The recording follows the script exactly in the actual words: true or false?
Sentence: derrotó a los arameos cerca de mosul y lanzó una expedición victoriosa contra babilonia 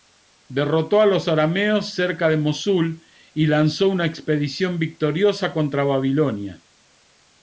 true